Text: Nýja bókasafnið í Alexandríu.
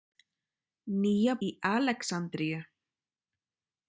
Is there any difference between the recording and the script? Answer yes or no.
yes